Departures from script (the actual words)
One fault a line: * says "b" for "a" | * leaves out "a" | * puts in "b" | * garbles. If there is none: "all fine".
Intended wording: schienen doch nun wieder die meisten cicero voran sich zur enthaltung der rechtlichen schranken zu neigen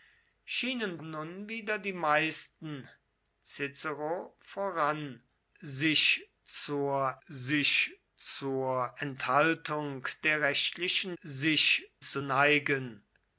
* leaves out "doch"
* puts in "sich zur"
* says "sich" for "schranken"